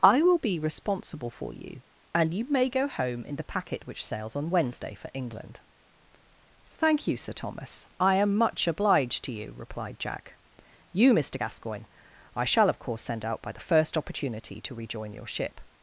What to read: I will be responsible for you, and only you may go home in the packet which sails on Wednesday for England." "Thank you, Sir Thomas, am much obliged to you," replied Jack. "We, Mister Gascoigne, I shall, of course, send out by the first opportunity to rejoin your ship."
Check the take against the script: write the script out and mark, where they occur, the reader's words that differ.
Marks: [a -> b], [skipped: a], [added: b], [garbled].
I will be responsible for you, and [skipped: only] you may go home in the packet which sails on Wednesday for England." "Thank you, Sir Thomas, [added: I] am much obliged to you," replied Jack. ["We, -> You] Mister Gascoigne, I shall, of course, send out by the first opportunity to rejoin your ship."